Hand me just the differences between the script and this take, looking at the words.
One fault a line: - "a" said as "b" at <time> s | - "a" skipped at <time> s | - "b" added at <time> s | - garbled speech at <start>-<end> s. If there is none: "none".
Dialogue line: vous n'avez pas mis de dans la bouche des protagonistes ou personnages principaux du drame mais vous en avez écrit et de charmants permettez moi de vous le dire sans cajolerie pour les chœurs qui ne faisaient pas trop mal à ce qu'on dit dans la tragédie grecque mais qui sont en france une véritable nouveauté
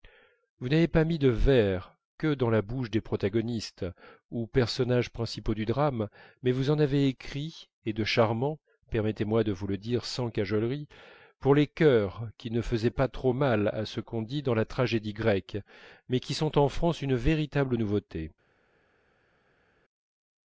- "vers que" added at 1.3 s